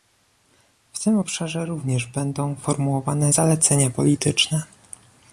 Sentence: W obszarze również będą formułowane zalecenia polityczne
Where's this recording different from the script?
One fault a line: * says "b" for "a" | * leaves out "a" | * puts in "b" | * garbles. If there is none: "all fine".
* puts in "tym"